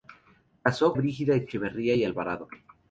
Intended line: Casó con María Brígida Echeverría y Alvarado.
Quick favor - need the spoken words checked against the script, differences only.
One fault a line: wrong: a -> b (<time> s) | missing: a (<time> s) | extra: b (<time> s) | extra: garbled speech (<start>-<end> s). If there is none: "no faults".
missing: con María (0.9 s)